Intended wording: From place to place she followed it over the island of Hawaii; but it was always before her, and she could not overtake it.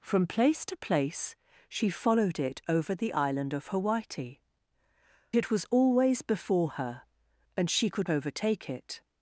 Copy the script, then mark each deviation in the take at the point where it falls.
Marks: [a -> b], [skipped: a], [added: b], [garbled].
From place to place she followed it over the island of Hawaii; [skipped: but] it was always before her, and she could [skipped: not] overtake it.